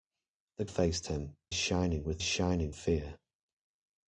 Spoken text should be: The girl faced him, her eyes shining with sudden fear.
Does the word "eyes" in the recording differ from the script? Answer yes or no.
yes